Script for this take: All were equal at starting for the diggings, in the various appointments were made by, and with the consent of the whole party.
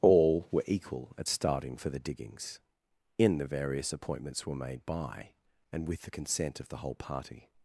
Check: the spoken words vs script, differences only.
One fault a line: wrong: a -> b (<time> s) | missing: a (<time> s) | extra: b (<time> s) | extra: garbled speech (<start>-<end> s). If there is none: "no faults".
no faults